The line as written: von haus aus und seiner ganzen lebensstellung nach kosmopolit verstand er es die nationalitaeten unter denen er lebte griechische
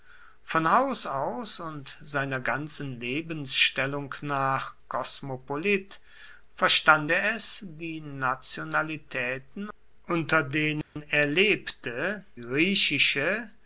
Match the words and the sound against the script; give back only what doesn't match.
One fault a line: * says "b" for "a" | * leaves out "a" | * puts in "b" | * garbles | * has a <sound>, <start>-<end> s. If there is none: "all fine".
* has a dropout, 10.8-11.0 s